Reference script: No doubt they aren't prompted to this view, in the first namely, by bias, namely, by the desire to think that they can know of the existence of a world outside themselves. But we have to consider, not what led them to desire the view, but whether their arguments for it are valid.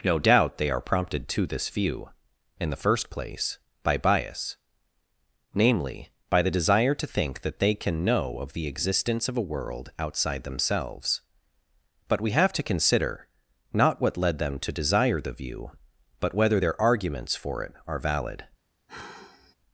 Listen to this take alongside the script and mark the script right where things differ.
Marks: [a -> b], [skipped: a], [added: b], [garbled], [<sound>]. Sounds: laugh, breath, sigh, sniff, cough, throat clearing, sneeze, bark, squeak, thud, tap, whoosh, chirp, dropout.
No doubt they [aren't -> are] prompted to this view, in the first [namely, -> place] by bias, namely, by the desire to think that they can know of the existence of a world outside themselves. But we have to consider, not what led them to desire the view, but whether their arguments for it are valid. [sigh]